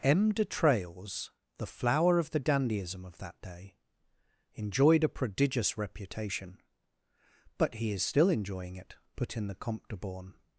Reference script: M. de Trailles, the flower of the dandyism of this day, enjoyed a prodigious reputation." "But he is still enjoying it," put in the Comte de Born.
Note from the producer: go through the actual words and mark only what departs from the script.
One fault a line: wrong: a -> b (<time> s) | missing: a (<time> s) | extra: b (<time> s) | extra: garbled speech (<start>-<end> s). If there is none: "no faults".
wrong: this -> that (3.2 s)